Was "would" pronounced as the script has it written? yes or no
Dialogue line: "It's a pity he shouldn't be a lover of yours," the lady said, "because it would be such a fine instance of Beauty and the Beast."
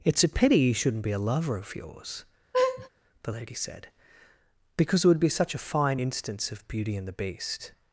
yes